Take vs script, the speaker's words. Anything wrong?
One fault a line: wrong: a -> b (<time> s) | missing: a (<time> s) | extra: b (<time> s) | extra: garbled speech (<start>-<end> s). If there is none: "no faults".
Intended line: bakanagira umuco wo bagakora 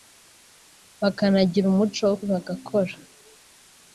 no faults